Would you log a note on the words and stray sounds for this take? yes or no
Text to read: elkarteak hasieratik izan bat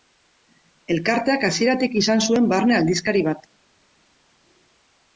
yes